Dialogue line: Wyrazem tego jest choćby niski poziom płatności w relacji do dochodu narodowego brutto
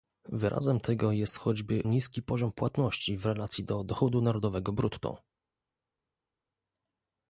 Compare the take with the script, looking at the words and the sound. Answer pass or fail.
pass